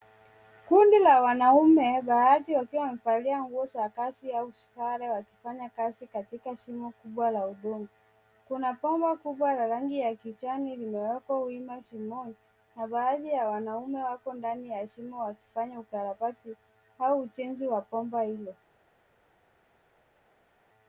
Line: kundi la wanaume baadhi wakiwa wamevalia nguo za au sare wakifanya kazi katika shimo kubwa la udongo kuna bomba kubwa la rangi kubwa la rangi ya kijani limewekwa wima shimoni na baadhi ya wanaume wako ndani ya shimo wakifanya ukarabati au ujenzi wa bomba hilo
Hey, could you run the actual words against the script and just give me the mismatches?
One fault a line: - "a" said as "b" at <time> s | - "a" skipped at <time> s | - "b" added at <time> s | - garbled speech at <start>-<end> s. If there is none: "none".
- "kazi" added at 3.9 s
- "kubwa la rangi" skipped at 10.0 s